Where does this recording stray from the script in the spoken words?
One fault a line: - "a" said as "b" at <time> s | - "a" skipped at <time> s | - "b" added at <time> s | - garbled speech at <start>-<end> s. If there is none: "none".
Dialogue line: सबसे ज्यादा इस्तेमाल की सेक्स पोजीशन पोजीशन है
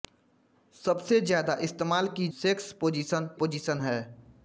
none